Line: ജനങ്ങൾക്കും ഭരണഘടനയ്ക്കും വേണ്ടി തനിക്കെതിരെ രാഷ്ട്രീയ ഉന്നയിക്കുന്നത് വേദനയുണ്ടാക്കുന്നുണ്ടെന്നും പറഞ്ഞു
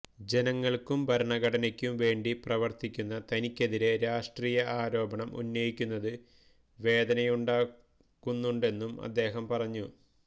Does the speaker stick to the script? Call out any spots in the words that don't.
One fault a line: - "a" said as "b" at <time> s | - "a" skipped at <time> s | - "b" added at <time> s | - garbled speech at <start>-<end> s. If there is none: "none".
- "പ്രവർത്തിക്കുന്ന" added at 2.4 s
- "ആരോപണം" added at 4.8 s
- "അദ്ദേഹം" added at 9.0 s